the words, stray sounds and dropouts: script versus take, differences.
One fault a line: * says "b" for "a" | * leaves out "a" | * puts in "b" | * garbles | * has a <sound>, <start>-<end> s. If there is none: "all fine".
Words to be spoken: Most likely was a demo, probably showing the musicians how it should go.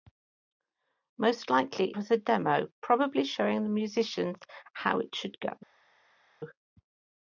all fine